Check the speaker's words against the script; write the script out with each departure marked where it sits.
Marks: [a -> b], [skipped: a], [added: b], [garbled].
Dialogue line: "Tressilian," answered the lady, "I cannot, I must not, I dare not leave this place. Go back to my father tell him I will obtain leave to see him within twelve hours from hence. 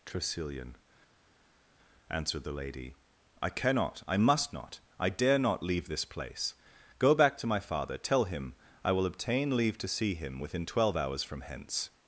"Tressilian," answered the lady, "I cannot, I must not, I dare not leave this place. Go back to my father tell him I will obtain leave to see him within twelve hours from hence.